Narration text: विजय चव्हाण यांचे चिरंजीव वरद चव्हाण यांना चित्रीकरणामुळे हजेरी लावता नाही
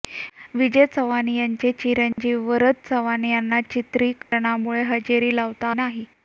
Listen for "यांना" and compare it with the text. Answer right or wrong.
right